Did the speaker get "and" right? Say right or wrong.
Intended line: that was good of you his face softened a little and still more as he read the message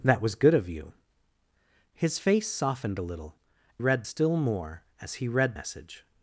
wrong